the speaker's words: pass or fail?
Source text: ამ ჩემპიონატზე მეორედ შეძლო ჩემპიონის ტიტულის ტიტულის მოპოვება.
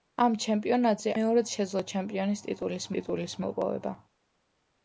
pass